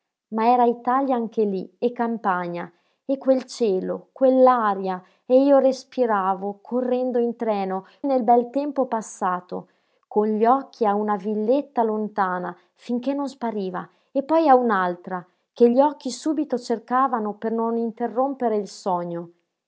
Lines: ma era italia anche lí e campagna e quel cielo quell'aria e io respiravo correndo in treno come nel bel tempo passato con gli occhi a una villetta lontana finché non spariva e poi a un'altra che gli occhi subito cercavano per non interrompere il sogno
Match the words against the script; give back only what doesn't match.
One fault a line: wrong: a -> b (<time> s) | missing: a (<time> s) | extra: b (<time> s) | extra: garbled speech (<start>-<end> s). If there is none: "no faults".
missing: come (7.8 s)